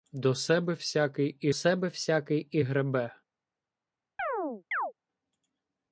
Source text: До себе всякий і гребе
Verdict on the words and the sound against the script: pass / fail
fail